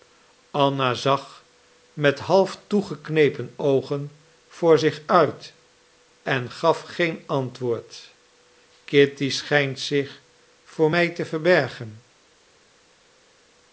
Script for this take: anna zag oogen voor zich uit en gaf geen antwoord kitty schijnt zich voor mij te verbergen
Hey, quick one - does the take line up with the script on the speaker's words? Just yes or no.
no